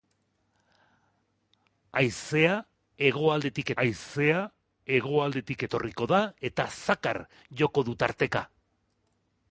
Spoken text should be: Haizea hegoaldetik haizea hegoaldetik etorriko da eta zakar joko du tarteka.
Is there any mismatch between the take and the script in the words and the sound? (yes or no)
no